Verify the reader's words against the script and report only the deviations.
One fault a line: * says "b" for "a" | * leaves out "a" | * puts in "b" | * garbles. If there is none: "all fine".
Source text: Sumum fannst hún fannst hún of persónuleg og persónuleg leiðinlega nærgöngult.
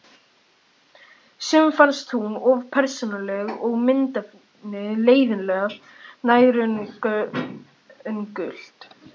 * leaves out "fannst hún"
* says "myndefnið" for "persónuleg"